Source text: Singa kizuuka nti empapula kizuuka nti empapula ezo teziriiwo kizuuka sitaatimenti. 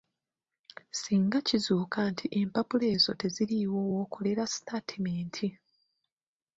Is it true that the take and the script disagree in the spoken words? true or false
true